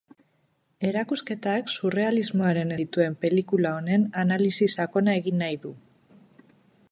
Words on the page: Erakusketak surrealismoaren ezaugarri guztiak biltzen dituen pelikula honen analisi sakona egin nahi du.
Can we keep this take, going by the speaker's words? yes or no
no